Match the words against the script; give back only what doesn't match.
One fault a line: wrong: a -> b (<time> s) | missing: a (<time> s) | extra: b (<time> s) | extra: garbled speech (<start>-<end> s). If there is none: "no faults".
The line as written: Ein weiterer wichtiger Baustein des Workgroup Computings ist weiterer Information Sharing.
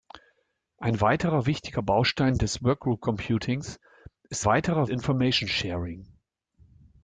no faults